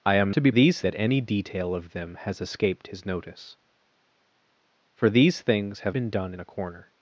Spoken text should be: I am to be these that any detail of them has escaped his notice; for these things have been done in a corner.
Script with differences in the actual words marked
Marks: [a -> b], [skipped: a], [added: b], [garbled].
I am to be these that any detail of them has escaped his notice; for these things have been done in a corner.